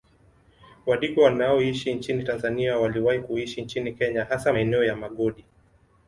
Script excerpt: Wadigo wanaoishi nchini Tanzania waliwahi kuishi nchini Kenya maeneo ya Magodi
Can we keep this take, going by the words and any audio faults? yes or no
no